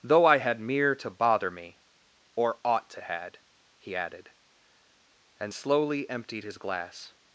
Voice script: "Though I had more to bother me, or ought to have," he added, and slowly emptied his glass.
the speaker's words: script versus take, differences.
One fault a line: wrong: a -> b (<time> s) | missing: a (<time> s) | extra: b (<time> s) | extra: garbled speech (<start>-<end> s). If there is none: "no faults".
wrong: more -> mere (0.6 s)
wrong: have -> had (3.0 s)